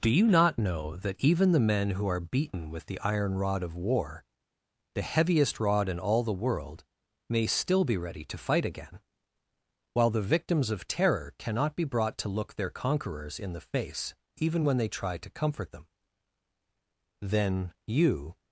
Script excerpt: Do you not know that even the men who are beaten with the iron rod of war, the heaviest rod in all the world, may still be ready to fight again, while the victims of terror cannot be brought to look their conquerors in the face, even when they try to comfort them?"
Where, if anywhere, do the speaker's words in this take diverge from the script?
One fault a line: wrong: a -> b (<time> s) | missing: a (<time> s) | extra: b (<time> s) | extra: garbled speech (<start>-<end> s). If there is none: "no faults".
extra: Then you (17.2 s)